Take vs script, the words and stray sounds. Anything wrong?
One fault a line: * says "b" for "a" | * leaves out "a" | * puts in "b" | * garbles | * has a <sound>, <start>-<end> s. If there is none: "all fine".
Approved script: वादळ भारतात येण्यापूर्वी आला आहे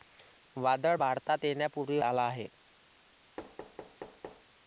* has a thud, 3.4-4.5 s